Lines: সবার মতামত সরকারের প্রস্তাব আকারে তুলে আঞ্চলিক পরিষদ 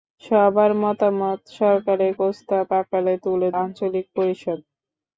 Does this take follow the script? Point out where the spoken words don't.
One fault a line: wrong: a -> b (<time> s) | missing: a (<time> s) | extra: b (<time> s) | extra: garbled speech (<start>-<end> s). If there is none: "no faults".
no faults